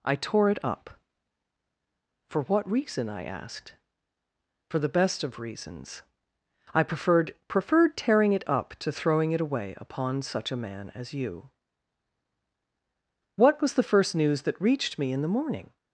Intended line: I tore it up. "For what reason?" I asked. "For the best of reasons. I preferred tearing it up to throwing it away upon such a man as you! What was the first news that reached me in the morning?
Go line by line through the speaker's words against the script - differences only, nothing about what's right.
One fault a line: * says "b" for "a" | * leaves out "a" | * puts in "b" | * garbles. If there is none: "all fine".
* puts in "preferred"